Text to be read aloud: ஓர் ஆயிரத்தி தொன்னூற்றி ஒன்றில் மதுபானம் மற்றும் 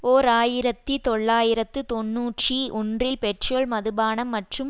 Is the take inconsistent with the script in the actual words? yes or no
yes